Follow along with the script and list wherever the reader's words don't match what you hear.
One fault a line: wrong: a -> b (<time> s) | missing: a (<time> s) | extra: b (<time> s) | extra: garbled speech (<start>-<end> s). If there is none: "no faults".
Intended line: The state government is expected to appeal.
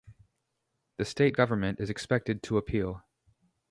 no faults